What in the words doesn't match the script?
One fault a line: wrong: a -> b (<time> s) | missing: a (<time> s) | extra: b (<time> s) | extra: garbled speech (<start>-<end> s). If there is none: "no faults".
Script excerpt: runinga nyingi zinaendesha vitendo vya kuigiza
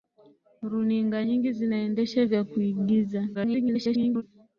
missing: vitendo (2.3 s)
extra: garbled speech (3.3-4.2 s)